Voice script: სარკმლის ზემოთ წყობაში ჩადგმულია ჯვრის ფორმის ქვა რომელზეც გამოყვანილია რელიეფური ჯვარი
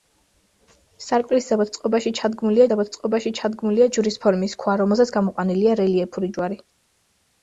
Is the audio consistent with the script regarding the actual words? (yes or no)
no